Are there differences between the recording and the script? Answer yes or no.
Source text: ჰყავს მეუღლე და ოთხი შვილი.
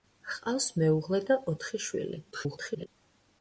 yes